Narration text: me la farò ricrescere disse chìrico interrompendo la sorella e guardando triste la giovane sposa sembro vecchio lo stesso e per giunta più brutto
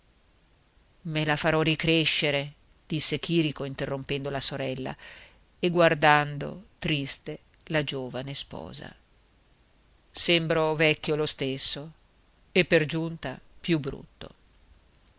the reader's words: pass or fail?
pass